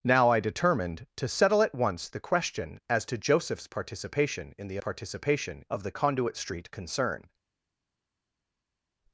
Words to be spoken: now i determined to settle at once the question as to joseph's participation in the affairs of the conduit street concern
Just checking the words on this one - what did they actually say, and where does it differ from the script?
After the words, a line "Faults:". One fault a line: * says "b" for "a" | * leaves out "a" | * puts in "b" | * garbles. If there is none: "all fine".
now i determined to settle at once the question as to joseph's participation in the participation of the conduit street concern
Faults:
* says "participation" for "affairs"